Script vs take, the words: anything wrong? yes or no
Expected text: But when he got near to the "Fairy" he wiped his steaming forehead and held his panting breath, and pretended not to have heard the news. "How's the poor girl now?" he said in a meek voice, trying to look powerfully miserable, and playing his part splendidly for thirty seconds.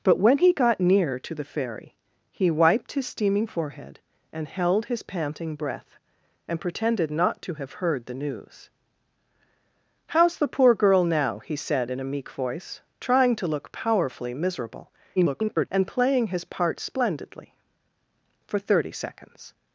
yes